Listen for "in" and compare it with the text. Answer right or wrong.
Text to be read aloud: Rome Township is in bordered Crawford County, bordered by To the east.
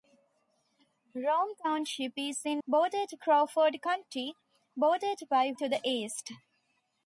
right